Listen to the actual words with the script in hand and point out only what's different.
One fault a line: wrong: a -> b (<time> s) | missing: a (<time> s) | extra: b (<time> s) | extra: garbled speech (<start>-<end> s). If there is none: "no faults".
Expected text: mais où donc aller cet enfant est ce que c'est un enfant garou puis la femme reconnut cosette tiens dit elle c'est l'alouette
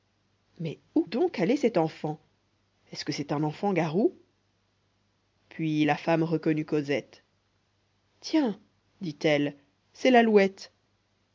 no faults